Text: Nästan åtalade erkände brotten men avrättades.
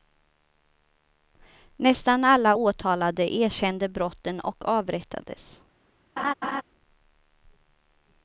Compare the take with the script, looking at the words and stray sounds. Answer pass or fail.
fail